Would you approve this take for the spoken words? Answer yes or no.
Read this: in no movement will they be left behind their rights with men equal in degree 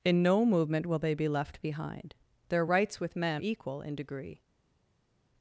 yes